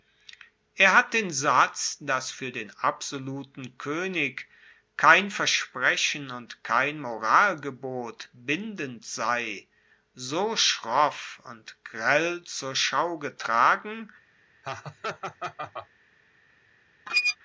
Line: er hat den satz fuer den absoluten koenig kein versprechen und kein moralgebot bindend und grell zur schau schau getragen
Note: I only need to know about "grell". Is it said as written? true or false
true